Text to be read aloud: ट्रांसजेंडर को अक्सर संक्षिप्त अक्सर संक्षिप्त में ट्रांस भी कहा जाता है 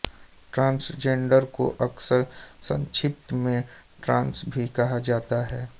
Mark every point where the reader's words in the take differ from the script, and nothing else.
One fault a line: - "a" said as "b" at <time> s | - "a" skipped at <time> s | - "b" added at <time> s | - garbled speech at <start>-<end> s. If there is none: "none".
- "अक्सर संक्षिप्त" skipped at 3.3 s